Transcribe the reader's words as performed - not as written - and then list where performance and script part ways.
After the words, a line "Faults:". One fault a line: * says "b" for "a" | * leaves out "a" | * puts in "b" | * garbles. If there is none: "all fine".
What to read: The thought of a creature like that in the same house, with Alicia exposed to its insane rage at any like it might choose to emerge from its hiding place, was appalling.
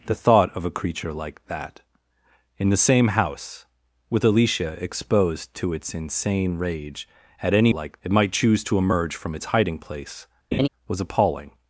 The thought of a creature like that in the same house, with Alicia exposed to its insane rage at any like it might choose to emerge from its hiding place, was appalling.
Faults:
all fine